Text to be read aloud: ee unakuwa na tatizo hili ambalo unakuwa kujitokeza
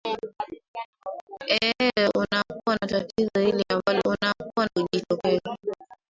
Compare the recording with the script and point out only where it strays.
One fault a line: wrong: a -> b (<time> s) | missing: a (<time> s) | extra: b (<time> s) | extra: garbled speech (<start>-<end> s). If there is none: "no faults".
no faults